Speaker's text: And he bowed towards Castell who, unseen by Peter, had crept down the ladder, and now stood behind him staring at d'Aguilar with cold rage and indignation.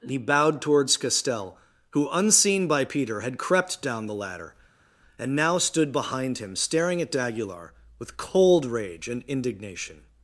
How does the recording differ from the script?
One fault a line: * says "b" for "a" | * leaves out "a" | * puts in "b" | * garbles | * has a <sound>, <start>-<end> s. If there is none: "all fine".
* leaves out "And"